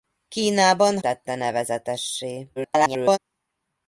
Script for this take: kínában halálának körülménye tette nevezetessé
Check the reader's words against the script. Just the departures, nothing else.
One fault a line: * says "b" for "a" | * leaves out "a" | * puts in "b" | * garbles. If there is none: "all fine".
* leaves out "halálának körülménye"
* garbles